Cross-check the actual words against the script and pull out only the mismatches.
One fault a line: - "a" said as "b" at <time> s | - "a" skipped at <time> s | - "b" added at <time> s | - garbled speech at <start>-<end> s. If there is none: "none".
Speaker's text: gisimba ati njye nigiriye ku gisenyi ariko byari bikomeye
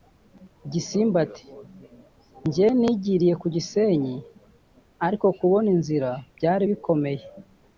- "kubona inzira" added at 5.4 s